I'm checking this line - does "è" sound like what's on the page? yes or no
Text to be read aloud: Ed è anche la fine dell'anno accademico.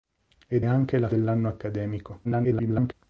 no